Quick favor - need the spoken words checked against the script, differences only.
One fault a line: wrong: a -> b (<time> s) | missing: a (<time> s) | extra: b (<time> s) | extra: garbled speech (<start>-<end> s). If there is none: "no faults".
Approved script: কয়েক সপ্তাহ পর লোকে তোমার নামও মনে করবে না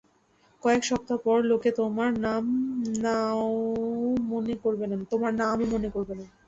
no faults